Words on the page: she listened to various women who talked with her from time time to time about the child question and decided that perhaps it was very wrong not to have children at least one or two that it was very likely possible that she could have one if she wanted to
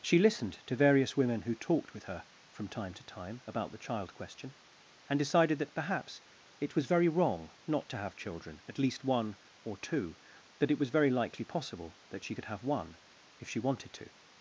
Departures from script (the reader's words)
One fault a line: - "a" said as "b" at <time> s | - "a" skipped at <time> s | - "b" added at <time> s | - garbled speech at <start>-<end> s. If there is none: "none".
- "time" skipped at 3.0 s